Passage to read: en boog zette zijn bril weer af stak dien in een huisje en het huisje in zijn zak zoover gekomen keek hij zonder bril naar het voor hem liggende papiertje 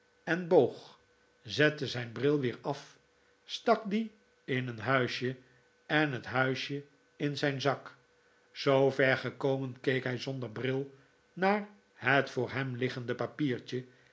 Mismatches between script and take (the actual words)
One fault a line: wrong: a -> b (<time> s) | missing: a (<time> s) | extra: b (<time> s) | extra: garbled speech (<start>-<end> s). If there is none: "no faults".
no faults